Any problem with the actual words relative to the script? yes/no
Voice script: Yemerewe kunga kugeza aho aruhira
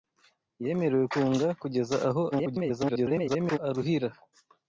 yes